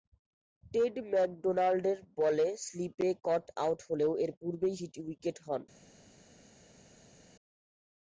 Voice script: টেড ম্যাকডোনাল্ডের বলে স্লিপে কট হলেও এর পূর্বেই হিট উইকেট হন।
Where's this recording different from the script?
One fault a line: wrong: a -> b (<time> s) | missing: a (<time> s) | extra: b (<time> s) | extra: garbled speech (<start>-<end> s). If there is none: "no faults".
extra: আউট (3.6 s)